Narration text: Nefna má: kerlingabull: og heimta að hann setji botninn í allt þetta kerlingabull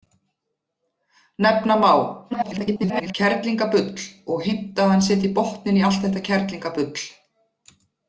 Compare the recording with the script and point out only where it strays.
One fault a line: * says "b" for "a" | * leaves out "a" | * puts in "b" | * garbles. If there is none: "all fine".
* garbles